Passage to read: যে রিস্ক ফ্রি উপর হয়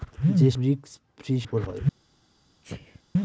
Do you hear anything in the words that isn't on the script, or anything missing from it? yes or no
no